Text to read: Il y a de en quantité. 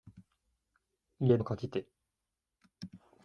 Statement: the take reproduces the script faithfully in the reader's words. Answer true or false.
true